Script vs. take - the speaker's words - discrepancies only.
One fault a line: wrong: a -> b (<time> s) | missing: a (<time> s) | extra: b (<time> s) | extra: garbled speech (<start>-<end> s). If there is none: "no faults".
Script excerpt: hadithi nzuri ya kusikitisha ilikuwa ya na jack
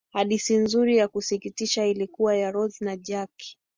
extra: rose (2.5 s)